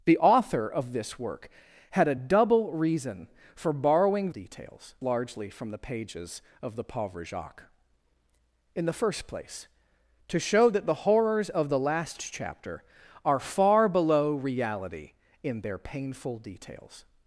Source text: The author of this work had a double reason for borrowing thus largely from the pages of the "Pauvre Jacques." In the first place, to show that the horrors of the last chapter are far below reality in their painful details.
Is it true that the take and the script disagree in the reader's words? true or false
true